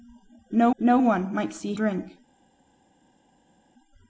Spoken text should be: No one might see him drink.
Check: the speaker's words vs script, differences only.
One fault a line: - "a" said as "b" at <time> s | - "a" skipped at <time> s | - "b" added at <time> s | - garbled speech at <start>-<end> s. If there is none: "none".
- "no" added at 0.8 s
- "him" skipped at 1.7 s